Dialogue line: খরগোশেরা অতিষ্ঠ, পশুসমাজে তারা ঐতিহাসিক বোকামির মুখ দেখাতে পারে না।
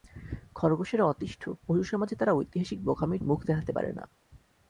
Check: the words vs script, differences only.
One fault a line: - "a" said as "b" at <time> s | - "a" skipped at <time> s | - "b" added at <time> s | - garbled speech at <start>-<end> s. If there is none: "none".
none